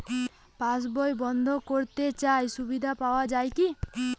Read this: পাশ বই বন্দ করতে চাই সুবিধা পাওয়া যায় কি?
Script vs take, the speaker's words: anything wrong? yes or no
no